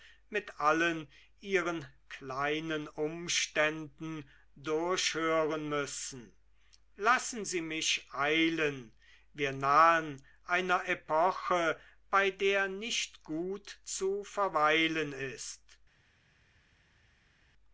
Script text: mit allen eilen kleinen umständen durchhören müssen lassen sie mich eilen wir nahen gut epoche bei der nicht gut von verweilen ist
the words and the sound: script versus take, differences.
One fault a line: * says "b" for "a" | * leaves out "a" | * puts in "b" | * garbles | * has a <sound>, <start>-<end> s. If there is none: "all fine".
* says "ihren" for "eilen"
* says "einer" for "gut"
* says "zu" for "von"